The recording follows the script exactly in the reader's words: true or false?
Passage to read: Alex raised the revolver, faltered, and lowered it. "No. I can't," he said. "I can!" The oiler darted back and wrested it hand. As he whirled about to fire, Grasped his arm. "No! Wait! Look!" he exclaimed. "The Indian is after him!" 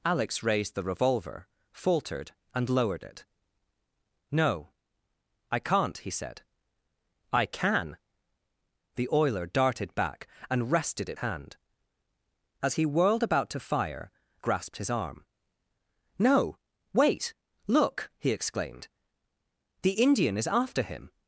true